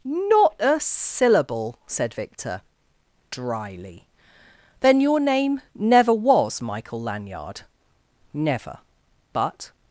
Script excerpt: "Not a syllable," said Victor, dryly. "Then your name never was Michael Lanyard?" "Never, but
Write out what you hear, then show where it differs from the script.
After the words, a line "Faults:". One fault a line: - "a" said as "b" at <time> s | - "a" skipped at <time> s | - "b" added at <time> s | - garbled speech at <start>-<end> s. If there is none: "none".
"Not a syllable," said Victor, dryly. "Then your name never was Michael Lanyard?" "Never, but
Faults:
none